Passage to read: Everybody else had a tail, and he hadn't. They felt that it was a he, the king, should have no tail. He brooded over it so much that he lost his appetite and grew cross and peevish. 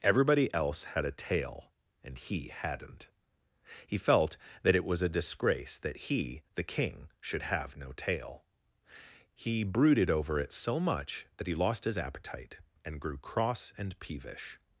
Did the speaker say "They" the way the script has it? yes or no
no